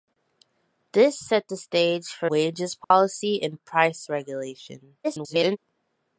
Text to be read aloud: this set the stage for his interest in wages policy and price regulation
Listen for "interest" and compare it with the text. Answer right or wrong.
wrong